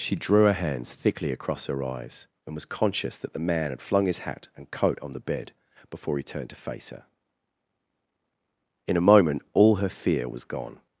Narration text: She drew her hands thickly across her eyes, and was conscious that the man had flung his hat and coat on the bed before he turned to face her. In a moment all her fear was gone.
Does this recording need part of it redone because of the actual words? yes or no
no